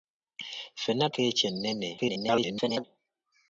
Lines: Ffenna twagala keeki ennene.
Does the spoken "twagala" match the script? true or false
false